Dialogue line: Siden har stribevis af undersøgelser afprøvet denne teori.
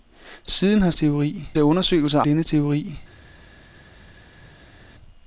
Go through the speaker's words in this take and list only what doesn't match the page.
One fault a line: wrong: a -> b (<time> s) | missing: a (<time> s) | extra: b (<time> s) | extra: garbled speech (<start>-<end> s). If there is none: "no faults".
wrong: stribevis -> teori (0.9 s)
missing: afprøvet (2.2 s)